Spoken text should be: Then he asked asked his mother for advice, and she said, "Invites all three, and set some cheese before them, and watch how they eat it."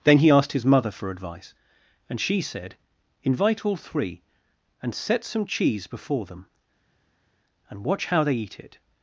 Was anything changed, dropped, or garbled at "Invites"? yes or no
yes